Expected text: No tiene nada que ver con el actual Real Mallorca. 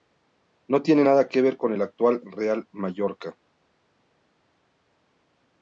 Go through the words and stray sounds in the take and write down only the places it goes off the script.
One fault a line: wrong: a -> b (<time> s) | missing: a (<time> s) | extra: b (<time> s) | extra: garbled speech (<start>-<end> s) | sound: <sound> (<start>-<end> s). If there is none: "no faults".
no faults